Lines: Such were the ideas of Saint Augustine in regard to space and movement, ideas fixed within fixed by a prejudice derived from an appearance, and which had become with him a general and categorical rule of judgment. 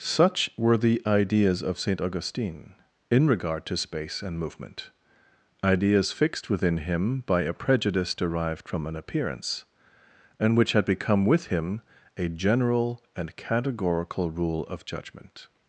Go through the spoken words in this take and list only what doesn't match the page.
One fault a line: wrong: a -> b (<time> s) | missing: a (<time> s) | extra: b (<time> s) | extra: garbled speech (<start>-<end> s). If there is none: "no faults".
wrong: fixed -> him (6.8 s)